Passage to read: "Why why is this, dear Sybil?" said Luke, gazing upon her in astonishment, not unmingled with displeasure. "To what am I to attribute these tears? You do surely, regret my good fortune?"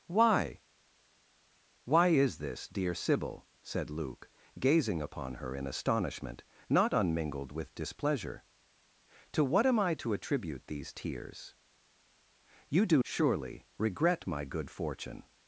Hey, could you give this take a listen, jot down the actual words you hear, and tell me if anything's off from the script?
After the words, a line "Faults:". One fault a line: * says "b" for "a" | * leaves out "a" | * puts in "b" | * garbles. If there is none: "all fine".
"Why why is this, dear Sybil?" said Luke, gazing upon her in astonishment, not unmingled with displeasure. "To what am I to attribute these tears? You do surely, regret my good fortune?"
Faults:
all fine